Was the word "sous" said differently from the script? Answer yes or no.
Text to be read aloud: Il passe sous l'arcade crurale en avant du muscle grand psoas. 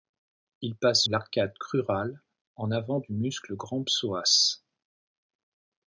yes